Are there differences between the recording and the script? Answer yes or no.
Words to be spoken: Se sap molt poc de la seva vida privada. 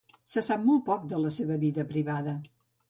no